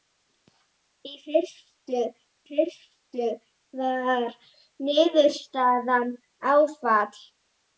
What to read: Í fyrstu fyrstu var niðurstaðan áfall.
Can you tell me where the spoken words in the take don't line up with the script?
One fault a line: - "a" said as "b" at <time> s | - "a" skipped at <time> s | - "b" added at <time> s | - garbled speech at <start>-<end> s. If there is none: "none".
none